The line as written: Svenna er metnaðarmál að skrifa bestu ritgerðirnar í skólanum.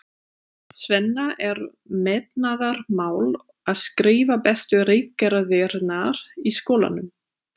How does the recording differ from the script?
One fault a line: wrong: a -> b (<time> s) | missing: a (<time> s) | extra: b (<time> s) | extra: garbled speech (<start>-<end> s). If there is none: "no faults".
no faults